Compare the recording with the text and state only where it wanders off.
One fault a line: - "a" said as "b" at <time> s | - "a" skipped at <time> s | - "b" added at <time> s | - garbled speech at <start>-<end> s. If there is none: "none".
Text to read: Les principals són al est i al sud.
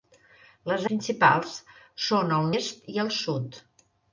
none